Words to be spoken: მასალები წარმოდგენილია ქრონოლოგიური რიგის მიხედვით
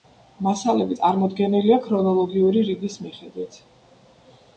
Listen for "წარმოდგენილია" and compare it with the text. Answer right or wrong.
right